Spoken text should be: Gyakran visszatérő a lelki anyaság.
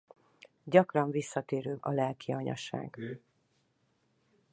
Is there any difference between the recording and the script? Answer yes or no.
no